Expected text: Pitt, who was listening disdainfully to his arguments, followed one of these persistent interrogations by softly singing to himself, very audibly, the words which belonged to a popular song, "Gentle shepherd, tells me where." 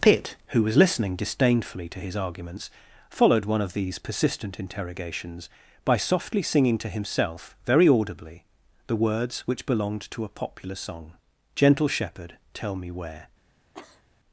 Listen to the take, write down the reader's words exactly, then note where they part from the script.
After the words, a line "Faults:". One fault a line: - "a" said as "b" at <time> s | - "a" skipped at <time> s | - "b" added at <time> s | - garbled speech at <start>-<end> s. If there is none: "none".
Pitt, who was listening disdainfully to his arguments, followed one of these persistent interrogations by softly singing to himself, very audibly, the words which belonged to a popular song, "Gentle shepherd, tell me where."
Faults:
- "tells" said as "tell" at 12.5 s